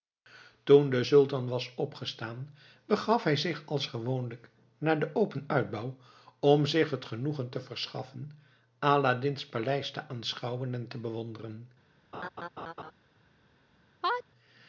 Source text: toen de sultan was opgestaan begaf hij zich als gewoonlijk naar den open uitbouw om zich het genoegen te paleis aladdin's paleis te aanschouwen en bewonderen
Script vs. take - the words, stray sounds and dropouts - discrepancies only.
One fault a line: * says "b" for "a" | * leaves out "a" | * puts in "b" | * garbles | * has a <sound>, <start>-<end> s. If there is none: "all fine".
* says "verschaffen" for "paleis"
* puts in "te"
* has a laugh, 12.1-12.9 s
* has a sneeze, 14.0-14.2 s